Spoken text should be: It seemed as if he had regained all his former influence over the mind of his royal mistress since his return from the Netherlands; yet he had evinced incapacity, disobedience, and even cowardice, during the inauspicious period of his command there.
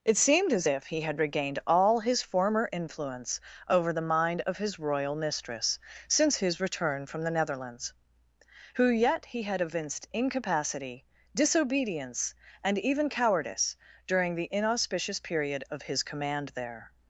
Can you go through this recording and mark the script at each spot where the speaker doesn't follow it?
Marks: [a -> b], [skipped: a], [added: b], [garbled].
It seemed as if he had regained all his former influence over the mind of his royal mistress since his return from the Netherlands; [added: who] yet he had evinced incapacity, disobedience, and even cowardice, during the inauspicious period of his command there.